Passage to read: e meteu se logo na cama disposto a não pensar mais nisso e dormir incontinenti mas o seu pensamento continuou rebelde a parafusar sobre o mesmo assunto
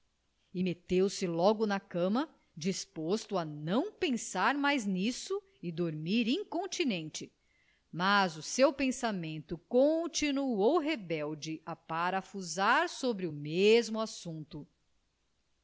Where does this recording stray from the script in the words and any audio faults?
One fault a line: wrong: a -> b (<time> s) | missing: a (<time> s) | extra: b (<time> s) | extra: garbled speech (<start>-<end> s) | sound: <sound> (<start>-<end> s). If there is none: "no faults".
no faults